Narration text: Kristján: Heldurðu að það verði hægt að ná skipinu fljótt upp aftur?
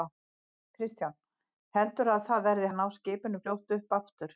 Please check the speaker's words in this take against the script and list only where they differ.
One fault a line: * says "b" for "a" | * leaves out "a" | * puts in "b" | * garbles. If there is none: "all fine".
* leaves out "hægt"